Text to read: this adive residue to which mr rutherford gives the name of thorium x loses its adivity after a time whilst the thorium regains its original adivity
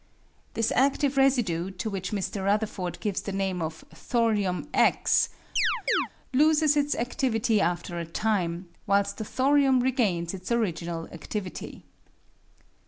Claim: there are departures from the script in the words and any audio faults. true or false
true